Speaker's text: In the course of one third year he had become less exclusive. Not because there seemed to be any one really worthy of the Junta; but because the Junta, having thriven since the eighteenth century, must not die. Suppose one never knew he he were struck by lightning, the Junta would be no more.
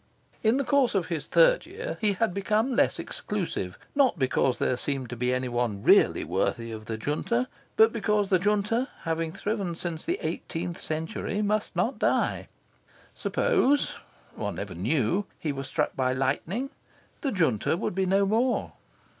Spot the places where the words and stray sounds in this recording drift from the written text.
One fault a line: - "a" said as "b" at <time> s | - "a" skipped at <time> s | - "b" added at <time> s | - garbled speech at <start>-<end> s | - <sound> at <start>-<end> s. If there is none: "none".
- "one" said as "his" at 1.1 s
- "he" skipped at 15.5 s